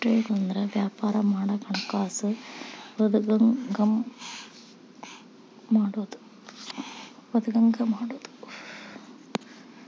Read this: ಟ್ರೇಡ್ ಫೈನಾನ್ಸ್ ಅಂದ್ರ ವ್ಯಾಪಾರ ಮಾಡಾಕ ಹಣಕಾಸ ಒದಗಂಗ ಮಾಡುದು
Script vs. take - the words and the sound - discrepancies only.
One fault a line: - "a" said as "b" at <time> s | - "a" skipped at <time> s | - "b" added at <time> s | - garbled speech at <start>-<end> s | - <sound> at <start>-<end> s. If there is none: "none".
- "ಫೈನಾನ್ಸ್" skipped at 0.3 s